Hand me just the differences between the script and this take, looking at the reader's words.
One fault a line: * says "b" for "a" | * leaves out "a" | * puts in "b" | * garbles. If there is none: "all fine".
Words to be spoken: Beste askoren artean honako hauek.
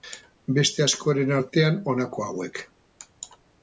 all fine